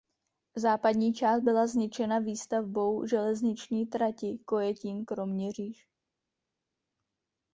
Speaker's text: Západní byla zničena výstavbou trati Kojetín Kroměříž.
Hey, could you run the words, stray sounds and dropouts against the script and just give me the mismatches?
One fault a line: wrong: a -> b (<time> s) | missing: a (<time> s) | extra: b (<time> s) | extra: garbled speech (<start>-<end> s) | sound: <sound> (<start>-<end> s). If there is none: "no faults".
extra: část (1.1 s)
extra: železniční (3.1 s)